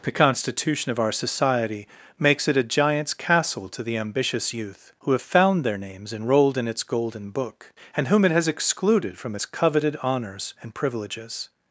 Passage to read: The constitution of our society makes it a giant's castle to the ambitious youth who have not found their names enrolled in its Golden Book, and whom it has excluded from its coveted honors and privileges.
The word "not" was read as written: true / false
false